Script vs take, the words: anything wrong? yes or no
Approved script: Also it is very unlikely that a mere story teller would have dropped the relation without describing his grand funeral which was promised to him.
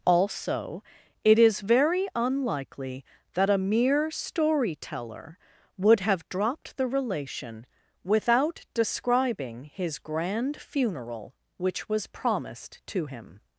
no